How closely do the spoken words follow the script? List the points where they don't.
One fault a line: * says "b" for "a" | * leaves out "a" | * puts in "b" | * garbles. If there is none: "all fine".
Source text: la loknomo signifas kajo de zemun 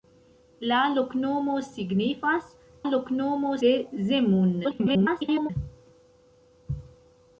* says "loknomo" for "kajo"
* garbles